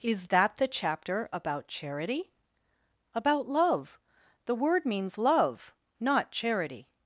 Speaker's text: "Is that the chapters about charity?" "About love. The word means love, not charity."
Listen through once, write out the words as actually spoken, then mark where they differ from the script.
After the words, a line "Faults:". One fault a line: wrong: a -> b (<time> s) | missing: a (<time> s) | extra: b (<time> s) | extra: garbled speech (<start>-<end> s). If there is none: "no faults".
"Is that the chapter about charity?" "About love. The word means love, not charity."
Faults:
wrong: chapters -> chapter (0.7 s)